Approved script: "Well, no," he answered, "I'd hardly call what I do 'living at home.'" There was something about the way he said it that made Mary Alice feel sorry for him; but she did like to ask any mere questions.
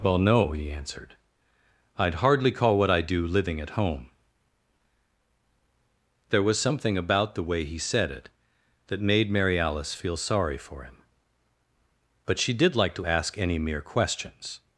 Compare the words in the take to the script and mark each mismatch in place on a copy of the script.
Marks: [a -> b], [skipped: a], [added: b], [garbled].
"Well, no," he answered, "I'd hardly call what I do 'living at home.'" There was something about the way he said it that made Mary Alice feel sorry for him; but she did like to ask any mere questions.